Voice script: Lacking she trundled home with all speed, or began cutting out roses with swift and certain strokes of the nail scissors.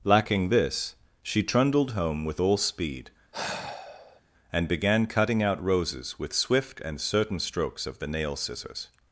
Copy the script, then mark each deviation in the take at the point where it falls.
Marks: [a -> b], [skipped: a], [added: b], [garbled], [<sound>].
Lacking [added: this] she trundled home with all speed, [sigh] [or -> and] began cutting out roses with swift and certain strokes of the nail scissors.